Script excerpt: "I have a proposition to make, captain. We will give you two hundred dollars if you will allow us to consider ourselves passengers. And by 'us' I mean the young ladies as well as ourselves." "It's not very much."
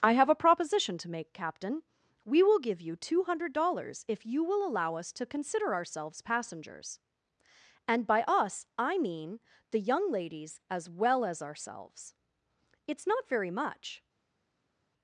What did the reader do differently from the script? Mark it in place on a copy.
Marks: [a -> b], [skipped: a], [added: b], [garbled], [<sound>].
"I have a proposition to make, captain. We will give you two hundred dollars if you will allow us to consider ourselves passengers. And by 'us' I mean the young ladies as well as ourselves." "It's not very much."